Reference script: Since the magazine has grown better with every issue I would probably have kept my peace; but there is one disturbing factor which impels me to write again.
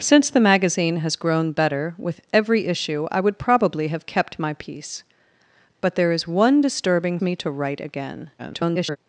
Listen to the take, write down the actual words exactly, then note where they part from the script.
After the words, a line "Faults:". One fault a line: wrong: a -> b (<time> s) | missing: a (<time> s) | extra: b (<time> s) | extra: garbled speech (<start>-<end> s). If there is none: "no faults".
Since the magazine has grown better with every issue I would probably have kept my peace; but there is one disturbing me to write again. [garbled]
Faults:
missing: factor which impels (7.2 s)
extra: garbled speech (8.4-9.0 s)